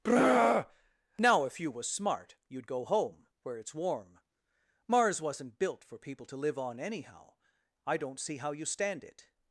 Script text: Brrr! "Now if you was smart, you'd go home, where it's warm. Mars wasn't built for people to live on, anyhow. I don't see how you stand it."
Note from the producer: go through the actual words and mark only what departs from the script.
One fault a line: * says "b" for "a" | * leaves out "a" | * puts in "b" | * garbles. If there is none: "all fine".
all fine